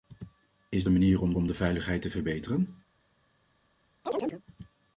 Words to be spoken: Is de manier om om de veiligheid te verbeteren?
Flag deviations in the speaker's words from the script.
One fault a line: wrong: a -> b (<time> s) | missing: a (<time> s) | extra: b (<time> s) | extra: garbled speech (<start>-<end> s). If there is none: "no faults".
no faults